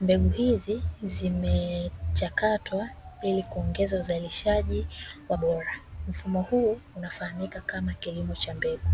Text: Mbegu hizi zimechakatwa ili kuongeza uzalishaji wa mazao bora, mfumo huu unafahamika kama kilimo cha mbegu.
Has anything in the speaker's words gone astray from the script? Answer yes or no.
yes